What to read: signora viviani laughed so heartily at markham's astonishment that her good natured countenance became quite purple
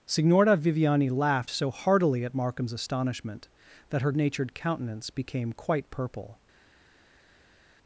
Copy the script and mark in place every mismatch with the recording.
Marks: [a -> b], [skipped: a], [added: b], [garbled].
signora viviani laughed so heartily at markham's astonishment that her [skipped: good] natured countenance became quite purple